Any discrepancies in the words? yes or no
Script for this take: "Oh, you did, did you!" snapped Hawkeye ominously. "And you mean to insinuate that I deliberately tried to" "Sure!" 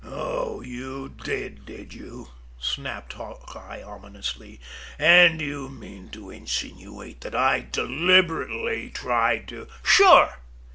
no